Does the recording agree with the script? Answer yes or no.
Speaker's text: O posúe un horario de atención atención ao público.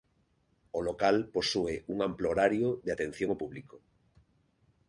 no